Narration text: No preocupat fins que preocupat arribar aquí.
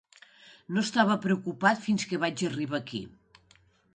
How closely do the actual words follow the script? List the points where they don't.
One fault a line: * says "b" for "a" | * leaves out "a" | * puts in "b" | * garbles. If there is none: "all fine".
* puts in "estava"
* says "vaig" for "preocupat"